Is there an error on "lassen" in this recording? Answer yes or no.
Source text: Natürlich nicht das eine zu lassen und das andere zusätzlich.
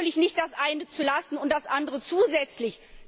no